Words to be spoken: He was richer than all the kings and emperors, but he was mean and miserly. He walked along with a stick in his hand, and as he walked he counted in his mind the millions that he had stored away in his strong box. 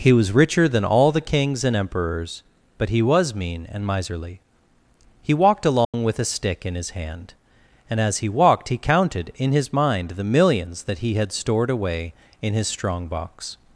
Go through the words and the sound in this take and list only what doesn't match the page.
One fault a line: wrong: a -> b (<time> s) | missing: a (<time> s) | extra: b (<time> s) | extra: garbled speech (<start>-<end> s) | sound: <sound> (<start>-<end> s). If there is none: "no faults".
sound: dropout (5.8-5.9 s)